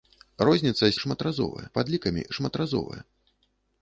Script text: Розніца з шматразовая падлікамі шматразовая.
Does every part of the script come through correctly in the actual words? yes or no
yes